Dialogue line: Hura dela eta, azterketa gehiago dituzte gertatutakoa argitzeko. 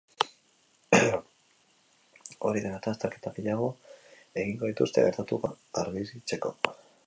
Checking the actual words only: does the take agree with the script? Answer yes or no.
no